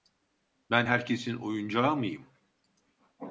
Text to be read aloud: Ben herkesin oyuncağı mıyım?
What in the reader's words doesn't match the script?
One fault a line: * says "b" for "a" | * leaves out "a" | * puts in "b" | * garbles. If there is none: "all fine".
all fine